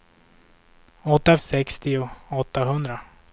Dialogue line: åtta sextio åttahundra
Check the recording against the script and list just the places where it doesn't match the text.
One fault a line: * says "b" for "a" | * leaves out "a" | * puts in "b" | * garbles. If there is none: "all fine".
all fine